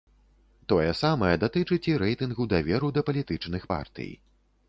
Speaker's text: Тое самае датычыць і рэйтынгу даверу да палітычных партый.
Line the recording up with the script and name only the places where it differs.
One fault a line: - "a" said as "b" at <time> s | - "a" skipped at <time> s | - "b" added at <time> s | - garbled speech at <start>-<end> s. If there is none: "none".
none